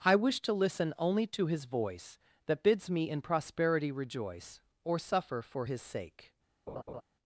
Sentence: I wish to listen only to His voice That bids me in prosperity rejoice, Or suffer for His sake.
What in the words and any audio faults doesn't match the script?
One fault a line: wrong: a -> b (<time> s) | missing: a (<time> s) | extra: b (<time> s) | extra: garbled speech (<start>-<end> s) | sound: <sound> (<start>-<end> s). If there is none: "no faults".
sound: laugh (6.7-7.0 s)